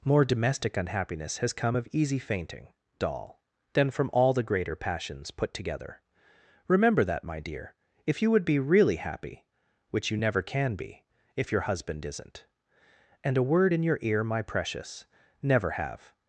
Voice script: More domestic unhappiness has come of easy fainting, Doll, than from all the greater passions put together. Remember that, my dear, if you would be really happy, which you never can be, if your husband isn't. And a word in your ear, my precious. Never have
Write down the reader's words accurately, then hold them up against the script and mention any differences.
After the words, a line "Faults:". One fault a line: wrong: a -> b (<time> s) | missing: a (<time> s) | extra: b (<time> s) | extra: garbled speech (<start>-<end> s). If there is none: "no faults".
More domestic unhappiness has come of easy fainting, Doll, than from all the greater passions put together. Remember that, my dear, if you would be really happy, which you never can be, if your husband isn't. And a word in your ear, my precious. Never have
Faults:
no faults